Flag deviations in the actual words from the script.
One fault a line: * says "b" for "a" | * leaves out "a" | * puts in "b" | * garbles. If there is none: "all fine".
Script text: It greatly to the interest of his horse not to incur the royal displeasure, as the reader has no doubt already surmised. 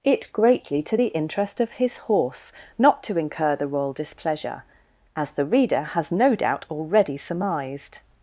all fine